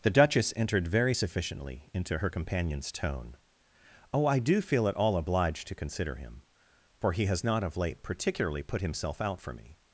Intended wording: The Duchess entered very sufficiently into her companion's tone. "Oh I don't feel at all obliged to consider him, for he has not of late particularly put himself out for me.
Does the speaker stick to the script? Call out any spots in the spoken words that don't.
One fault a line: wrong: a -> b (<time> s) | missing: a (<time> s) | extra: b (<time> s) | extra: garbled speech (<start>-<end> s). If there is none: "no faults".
wrong: don't -> do (4.4 s)